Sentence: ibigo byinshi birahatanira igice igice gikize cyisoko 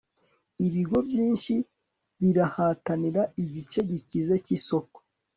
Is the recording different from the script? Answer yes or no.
yes